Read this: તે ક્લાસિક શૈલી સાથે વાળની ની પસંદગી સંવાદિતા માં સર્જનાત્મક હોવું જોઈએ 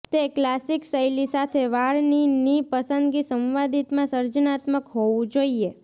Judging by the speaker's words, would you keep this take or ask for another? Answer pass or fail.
pass